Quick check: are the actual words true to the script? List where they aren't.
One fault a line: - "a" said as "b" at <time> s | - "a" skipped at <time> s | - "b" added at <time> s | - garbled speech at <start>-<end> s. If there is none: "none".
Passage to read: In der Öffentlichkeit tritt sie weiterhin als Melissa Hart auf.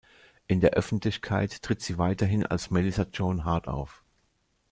- "Joan" added at 3.1 s